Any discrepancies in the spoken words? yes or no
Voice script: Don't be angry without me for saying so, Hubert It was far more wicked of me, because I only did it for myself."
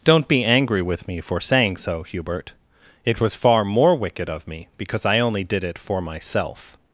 yes